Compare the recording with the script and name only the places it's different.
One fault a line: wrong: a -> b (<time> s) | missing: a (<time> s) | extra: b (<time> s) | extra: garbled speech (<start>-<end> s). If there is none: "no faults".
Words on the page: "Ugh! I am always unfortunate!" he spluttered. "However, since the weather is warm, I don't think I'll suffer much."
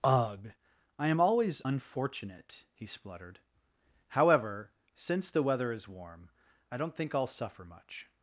no faults